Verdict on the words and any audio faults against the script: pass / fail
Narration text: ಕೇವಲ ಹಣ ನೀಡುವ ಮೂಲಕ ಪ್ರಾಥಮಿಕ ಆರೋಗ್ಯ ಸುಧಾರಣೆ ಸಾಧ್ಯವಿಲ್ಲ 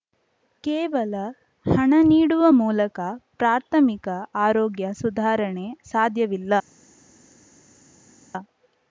pass